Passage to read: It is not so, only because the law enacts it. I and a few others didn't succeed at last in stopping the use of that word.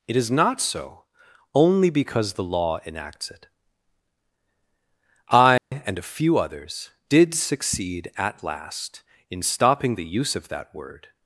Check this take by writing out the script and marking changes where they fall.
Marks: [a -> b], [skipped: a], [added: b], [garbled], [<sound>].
It is not so, only because the law enacts it. I [dropout] and a few others [didn't -> did] succeed at last in stopping the use of that word.